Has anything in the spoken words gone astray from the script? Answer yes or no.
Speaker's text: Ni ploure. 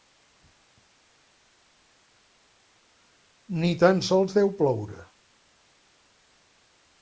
yes